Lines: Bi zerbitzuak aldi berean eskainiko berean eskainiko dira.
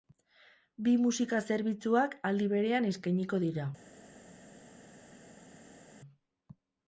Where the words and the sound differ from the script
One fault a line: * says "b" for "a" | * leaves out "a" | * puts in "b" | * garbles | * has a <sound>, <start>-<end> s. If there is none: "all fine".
* puts in "musika"
* leaves out "berean eskainiko"